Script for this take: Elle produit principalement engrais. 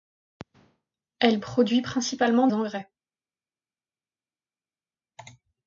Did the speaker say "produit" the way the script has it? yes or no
yes